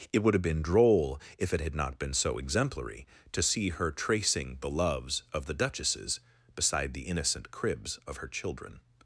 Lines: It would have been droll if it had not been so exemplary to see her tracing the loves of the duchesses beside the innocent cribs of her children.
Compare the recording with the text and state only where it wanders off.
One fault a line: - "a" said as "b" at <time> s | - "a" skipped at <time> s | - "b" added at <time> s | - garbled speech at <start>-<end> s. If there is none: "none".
none